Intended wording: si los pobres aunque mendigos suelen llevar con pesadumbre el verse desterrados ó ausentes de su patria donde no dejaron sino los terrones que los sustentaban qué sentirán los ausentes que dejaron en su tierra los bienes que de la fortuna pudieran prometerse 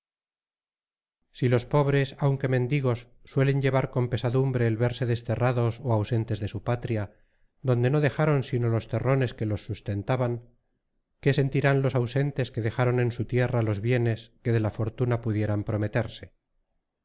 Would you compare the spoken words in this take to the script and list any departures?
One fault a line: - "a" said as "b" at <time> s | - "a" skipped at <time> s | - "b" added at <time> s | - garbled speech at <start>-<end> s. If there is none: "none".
none